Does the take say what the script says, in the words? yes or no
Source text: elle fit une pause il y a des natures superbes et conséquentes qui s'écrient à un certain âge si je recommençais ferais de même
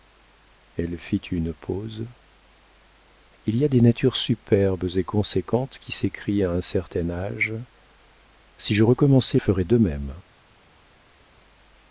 yes